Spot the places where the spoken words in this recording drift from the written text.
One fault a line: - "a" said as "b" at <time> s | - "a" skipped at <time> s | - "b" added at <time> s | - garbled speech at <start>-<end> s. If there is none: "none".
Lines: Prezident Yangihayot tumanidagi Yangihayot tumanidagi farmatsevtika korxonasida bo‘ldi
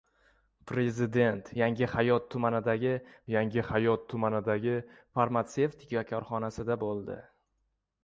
none